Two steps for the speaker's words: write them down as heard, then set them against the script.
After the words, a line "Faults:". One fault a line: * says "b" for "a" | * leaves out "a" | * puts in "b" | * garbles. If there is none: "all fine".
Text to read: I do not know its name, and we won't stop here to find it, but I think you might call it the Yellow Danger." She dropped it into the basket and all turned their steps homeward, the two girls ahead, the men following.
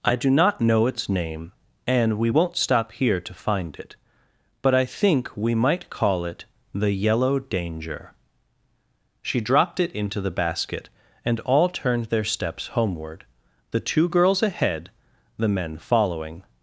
I do not know its name, and we won't stop here to find it, but I think we might call it the Yellow Danger." She dropped it into the basket and all turned their steps homeward, the two girls ahead, the men following.
Faults:
* says "we" for "you"